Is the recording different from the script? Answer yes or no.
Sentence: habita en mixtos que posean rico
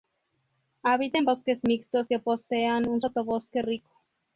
yes